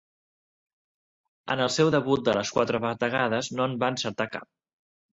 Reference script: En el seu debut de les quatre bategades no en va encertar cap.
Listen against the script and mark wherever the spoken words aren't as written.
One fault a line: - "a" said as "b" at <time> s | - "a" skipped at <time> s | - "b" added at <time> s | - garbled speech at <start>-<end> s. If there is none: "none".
none